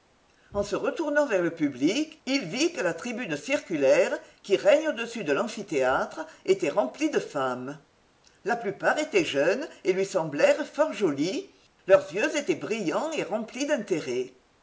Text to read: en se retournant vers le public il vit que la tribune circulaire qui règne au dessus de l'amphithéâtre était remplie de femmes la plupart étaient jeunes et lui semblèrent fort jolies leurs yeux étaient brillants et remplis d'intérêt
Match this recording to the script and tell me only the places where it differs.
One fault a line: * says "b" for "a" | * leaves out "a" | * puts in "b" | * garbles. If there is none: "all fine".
all fine